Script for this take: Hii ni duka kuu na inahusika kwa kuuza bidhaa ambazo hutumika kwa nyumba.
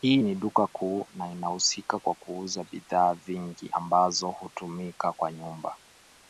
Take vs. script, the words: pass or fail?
fail